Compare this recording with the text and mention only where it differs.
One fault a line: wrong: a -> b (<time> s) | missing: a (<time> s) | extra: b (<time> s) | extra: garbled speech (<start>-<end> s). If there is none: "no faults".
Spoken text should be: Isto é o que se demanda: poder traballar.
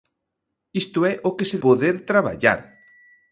missing: demanda (1.6 s)